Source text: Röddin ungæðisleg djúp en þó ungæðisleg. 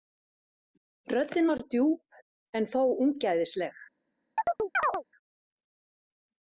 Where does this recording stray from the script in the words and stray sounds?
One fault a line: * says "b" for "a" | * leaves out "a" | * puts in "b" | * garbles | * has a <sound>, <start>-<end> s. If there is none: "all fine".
* says "var" for "ungæðisleg"
* has a chirp, 4.4-5.0 s